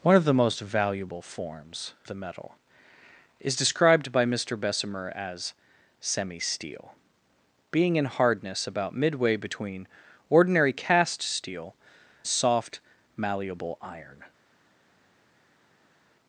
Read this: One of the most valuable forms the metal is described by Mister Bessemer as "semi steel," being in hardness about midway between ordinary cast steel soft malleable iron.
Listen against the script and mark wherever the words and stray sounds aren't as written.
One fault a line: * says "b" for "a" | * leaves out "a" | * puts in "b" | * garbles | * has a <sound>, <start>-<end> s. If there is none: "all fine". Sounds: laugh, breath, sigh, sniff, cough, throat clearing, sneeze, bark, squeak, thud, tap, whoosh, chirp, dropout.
all fine